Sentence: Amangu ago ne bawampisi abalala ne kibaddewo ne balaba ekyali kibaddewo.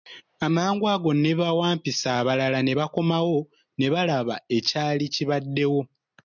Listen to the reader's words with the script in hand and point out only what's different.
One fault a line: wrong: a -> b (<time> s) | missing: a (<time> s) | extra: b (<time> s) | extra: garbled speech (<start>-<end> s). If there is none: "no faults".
wrong: kibaddewo -> bakomawo (2.8 s)